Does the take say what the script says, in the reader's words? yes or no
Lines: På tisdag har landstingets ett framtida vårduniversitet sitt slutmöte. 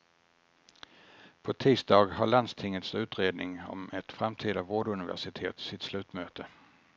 no